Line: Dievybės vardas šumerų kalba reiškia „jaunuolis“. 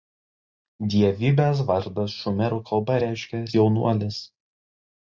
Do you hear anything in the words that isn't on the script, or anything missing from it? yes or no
no